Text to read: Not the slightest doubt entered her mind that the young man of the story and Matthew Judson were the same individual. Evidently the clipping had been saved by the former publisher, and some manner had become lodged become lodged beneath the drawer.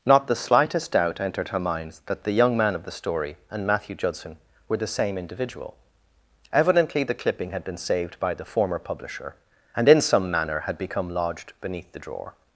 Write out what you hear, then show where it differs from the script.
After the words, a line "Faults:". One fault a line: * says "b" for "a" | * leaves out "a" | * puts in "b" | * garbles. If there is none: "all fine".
Not the slightest doubt entered her mind that the young man of the story and Matthew Judson were the same individual. Evidently the clipping had been saved by the former publisher, and in some manner had become lodged beneath the drawer.
Faults:
* puts in "in"
* leaves out "become lodged"